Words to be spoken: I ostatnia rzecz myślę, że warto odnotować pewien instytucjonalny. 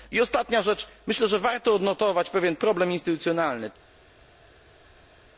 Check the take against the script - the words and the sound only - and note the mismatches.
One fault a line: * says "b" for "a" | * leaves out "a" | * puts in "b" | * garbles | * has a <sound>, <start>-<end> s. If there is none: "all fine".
* puts in "problem"